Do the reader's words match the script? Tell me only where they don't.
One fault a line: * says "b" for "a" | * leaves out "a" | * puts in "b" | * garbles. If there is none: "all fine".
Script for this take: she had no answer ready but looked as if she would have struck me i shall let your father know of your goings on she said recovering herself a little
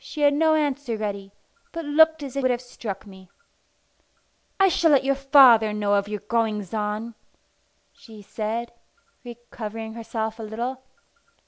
* leaves out "she"